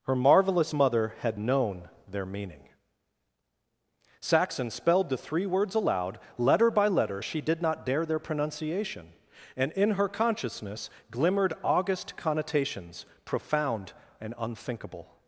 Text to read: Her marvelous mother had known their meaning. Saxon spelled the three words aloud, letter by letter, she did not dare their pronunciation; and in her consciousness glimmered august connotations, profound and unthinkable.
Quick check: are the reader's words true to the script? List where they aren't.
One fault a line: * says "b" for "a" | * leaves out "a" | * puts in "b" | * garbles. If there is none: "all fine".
all fine